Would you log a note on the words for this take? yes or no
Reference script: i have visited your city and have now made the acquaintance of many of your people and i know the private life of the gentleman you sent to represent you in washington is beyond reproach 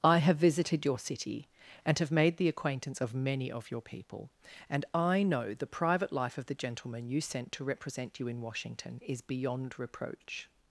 yes